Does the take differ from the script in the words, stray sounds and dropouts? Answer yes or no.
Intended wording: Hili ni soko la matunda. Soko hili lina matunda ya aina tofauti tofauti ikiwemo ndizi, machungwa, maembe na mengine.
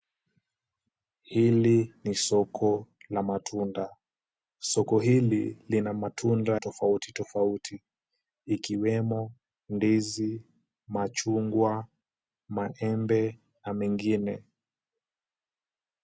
yes